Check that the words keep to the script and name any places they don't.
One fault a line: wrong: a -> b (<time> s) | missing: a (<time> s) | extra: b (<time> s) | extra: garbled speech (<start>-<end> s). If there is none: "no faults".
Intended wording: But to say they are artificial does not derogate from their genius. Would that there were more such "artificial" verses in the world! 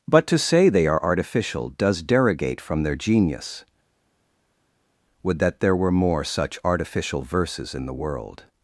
missing: not (2.0 s)